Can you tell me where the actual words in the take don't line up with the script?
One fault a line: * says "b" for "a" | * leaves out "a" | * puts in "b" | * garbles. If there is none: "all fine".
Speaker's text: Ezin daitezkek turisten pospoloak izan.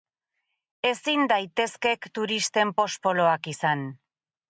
all fine